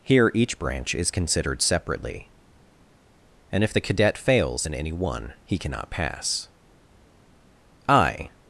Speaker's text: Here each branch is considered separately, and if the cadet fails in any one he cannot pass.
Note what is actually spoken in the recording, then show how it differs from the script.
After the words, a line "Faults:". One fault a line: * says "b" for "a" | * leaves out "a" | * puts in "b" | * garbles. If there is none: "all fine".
Here each branch is considered separately, and if the cadet fails in any one he cannot pass. I
Faults:
* puts in "I"